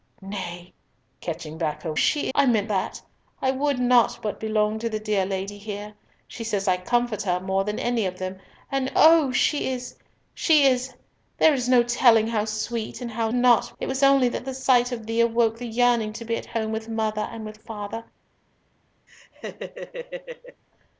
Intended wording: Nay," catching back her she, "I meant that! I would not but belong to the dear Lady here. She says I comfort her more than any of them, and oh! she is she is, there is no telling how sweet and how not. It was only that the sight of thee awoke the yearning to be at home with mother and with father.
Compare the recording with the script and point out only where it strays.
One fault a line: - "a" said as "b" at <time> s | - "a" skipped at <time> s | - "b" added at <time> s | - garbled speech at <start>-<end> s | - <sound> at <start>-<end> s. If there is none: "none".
- laugh at 19.1-20.6 s